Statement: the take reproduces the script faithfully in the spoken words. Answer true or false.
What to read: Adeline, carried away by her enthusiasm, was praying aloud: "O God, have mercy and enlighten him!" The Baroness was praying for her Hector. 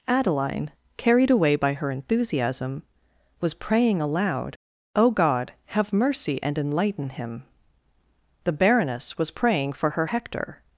true